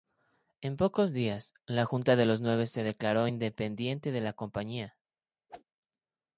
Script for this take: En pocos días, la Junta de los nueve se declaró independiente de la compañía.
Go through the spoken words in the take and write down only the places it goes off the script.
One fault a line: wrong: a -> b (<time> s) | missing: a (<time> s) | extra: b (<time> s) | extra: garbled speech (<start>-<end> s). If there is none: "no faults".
no faults